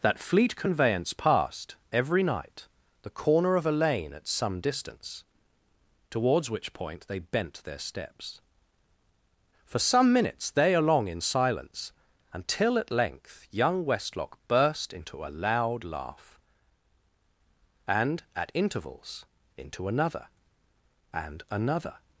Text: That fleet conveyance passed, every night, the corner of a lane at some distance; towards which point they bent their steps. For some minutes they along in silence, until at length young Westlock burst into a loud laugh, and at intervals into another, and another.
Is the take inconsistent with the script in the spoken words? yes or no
no